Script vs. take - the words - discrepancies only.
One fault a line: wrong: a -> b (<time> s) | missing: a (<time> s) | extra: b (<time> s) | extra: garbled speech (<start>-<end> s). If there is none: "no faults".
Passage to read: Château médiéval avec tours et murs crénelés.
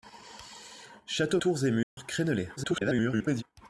missing: médiéval avec (1.4 s)
extra: garbled speech (2.6-3.4 s)